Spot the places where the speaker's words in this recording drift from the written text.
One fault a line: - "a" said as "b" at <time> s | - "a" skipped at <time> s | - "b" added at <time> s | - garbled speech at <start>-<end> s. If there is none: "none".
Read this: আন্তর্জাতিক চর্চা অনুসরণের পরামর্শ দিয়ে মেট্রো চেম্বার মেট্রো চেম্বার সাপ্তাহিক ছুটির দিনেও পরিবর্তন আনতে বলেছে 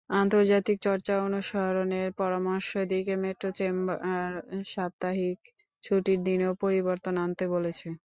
- "মেট্রো চেম্বার" skipped at 4.3 s